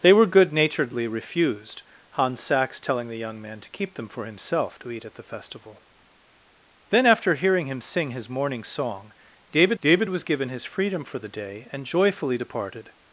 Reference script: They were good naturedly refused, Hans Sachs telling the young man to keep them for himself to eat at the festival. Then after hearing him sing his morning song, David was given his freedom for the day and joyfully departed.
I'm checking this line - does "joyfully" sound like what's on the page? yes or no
yes